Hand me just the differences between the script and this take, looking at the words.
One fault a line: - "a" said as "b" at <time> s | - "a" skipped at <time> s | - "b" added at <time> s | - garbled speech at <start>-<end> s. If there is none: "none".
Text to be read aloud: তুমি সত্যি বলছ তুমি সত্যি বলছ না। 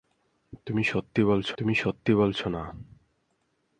none